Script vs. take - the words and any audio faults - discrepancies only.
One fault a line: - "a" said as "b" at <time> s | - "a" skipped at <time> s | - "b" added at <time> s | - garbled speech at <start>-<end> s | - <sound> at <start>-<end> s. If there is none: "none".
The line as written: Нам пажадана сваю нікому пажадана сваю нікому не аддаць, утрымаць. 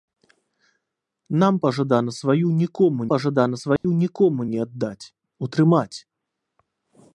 - dropout at 3.8-3.8 s